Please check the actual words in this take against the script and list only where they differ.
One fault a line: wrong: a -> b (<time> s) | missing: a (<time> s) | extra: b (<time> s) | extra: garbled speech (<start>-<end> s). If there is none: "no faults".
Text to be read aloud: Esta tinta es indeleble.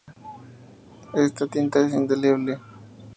no faults